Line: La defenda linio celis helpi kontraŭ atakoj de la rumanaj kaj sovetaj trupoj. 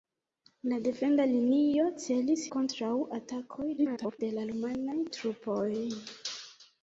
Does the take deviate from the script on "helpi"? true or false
true